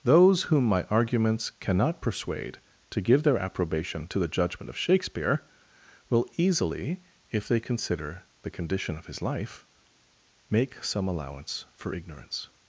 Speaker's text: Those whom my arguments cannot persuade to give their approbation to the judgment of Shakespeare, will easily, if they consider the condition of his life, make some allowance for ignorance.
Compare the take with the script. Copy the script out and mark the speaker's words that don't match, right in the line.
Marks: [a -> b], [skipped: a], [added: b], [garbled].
Those whom my arguments cannot persuade to give their approbation to the judgment of Shakespeare, will easily, if they consider the condition of his life, make some allowance for ignorance.